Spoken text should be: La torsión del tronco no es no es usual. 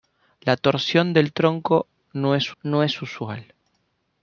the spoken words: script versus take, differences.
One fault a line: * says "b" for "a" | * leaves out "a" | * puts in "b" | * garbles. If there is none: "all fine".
all fine